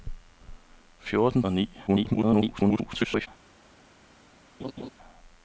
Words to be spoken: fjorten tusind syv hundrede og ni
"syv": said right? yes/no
no